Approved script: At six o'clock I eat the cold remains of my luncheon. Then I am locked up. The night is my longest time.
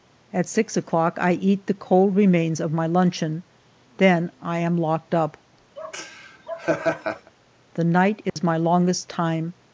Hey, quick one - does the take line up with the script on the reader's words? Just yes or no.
yes